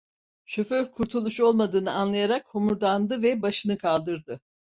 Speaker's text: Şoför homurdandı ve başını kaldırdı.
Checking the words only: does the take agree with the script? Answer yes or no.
no